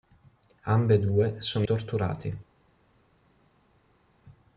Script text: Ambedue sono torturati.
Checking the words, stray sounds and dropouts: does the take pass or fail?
pass